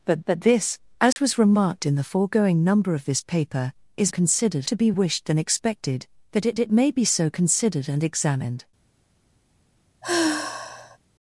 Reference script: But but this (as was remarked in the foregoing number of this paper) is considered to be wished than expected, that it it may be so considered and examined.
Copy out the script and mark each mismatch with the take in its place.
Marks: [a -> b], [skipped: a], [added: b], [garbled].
But but this (as was remarked in the foregoing number of this paper) is considered to be wished than expected, that it it may be so considered and examined.